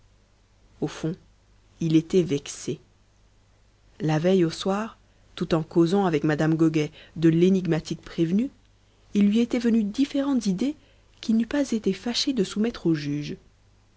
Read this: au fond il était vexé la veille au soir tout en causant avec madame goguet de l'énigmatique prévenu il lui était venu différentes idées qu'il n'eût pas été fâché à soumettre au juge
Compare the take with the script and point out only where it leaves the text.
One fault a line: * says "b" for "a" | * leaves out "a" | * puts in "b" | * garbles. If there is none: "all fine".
* says "de" for "à"